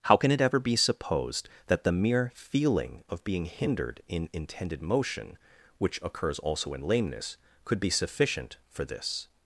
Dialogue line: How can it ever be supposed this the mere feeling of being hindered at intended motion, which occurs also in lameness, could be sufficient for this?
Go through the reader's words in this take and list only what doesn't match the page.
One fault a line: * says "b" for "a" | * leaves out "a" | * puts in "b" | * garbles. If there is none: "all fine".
* says "that" for "this"
* says "in" for "at"